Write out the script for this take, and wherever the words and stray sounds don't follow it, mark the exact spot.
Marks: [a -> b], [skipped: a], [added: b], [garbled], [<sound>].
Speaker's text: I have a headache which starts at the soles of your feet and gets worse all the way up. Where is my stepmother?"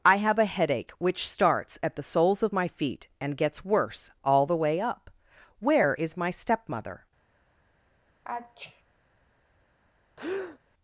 I have a headache which starts at the soles of [your -> my] feet and gets worse all the way up. Where is my stepmother?" [sneeze] [breath]